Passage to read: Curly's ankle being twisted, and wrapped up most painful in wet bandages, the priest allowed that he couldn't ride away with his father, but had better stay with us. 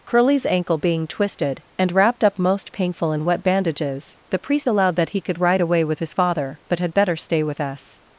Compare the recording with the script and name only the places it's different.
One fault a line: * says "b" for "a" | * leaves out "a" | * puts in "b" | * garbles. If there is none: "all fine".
* says "could" for "couldn't"